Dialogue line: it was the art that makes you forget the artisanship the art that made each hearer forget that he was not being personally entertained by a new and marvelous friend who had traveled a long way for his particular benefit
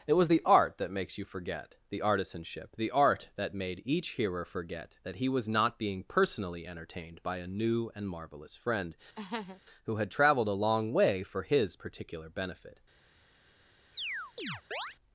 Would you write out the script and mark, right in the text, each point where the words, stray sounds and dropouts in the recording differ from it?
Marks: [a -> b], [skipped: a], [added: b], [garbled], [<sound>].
it was the art that makes you forget the artisanship the art that made each hearer forget that he was not being personally entertained by a new and marvelous friend [laugh] who had traveled a long way for his particular benefit [chirp]